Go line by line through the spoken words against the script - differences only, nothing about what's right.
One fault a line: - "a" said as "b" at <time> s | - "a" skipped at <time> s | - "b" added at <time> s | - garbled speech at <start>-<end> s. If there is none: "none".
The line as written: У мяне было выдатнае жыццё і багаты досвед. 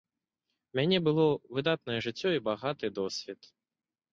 none